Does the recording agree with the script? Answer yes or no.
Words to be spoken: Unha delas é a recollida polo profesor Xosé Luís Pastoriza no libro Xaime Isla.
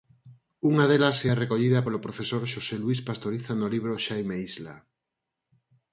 yes